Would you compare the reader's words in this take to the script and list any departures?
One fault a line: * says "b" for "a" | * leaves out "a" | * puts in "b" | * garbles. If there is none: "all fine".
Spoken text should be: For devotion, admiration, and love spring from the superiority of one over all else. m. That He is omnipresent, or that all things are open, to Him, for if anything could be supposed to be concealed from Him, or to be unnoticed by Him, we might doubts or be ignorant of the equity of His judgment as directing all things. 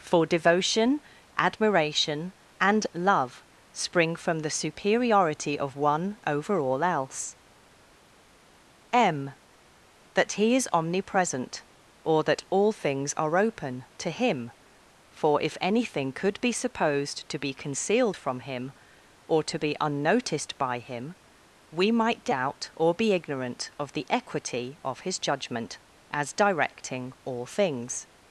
* says "doubt" for "doubts"